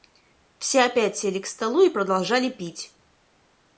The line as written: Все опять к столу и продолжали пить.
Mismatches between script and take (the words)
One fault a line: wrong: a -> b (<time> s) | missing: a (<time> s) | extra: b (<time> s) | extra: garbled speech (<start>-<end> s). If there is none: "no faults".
extra: сели (1.1 s)